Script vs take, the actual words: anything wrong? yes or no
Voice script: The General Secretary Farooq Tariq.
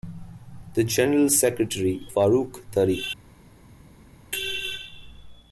no